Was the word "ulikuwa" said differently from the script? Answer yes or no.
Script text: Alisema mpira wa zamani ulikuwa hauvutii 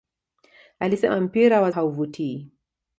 yes